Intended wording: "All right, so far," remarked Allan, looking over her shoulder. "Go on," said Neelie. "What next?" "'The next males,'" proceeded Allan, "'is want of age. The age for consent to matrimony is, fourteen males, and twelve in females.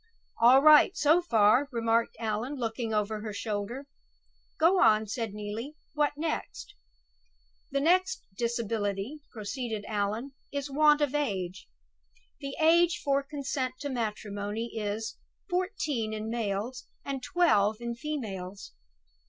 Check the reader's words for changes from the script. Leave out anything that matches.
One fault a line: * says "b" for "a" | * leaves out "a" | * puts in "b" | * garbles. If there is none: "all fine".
* says "disability" for "males"
* puts in "in"